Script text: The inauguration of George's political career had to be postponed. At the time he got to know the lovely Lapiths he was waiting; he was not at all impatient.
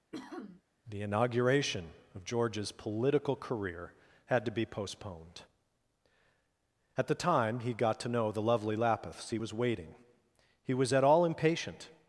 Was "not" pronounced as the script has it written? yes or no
no